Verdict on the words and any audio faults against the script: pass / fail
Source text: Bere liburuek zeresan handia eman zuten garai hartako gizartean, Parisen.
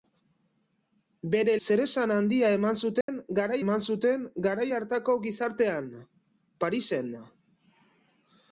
fail